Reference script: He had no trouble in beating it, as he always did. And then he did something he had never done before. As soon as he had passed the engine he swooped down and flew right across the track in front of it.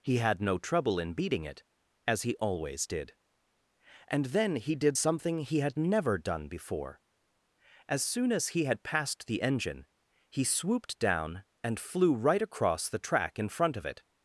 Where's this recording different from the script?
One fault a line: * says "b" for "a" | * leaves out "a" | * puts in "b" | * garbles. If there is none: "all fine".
all fine